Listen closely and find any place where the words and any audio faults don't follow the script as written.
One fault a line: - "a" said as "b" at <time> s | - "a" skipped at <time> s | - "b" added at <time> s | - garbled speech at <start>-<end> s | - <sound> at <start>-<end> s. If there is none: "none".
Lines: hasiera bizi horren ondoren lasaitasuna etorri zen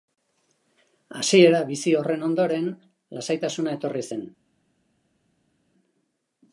none